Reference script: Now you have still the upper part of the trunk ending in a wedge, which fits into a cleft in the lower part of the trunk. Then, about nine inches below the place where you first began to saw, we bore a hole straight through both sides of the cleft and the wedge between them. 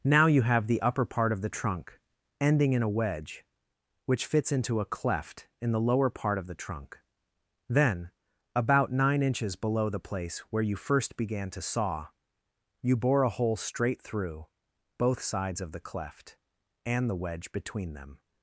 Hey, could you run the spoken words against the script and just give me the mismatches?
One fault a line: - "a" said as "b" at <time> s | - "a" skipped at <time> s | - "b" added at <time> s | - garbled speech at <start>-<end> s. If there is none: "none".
- "still" skipped at 0.7 s
- "we" said as "you" at 12.8 s